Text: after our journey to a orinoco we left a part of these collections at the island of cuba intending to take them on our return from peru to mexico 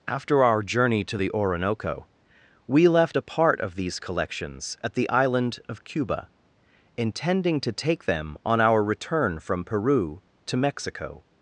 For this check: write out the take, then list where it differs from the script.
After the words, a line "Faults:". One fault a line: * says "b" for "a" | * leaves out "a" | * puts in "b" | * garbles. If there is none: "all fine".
after our journey to the orinoco we left a part of these collections at the island of cuba intending to take them on our return from peru to mexico
Faults:
* says "the" for "a"